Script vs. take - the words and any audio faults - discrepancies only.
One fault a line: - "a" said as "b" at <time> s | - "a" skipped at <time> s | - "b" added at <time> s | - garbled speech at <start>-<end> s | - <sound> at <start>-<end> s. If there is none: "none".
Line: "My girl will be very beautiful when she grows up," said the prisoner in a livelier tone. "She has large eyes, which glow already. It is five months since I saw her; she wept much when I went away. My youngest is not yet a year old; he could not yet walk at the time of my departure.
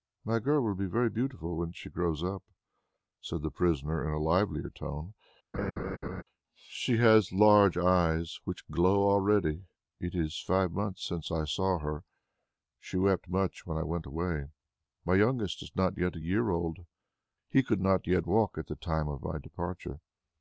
- laugh at 5.5-6.2 s